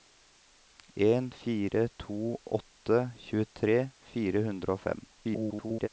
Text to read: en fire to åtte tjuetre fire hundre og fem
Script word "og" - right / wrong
right